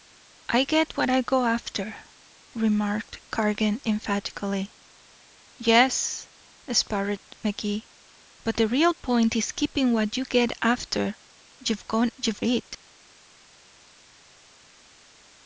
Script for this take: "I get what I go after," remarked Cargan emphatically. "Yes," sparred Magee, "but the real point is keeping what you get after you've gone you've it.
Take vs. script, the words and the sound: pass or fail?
pass